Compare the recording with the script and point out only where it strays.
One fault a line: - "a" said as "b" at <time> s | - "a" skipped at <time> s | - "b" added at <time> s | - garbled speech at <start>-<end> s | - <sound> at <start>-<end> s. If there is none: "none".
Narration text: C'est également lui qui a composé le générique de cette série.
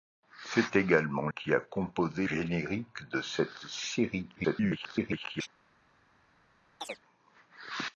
- "lui" skipped at 1.3 s
- "le" skipped at 2.3 s
- garbled speech at 4.4-5.5 s
- chirp at 6.8-7.0 s